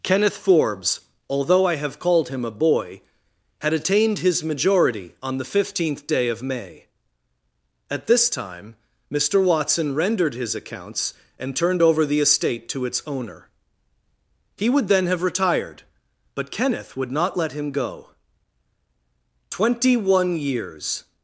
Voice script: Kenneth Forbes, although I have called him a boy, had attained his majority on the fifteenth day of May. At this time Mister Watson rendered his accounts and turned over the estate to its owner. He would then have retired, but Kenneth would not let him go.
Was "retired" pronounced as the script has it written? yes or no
yes